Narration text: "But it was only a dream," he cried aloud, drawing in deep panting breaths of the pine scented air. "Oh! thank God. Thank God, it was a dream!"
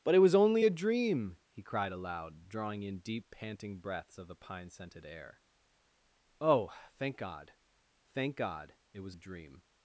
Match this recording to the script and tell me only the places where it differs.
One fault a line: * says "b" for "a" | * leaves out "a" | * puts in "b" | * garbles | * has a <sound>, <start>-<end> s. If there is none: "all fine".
all fine